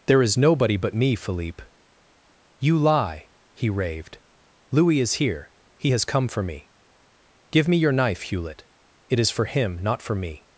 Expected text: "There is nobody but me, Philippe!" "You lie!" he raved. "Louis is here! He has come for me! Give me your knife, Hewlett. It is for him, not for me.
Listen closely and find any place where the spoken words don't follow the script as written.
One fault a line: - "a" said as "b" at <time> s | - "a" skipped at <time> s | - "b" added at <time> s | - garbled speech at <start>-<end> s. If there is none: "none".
none